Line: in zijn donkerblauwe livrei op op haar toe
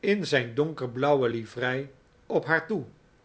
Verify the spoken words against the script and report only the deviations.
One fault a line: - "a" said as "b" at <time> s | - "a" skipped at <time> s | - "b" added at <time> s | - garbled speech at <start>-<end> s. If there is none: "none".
- "op" skipped at 2.4 s